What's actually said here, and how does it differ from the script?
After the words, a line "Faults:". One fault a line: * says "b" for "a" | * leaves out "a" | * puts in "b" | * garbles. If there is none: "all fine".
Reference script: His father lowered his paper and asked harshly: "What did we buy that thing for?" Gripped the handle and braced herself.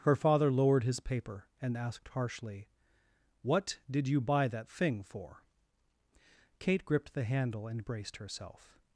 Her father lowered his paper and asked harshly: "What did you buy that thing for?" Kate gripped the handle and braced herself.
Faults:
* says "Her" for "His"
* says "you" for "we"
* puts in "Kate"